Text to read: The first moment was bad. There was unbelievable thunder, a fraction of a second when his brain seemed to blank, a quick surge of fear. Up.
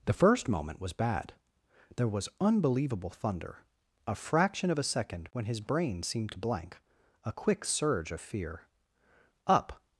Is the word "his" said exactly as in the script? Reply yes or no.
yes